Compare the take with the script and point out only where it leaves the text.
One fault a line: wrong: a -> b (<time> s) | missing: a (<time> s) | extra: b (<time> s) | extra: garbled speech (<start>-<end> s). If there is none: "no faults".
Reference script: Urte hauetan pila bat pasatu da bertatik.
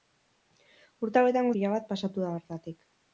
no faults